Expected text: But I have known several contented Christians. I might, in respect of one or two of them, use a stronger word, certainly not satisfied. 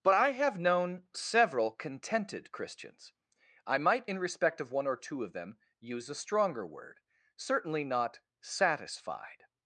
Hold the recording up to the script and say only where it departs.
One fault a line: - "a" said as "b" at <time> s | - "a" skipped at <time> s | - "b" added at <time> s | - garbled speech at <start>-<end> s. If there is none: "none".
none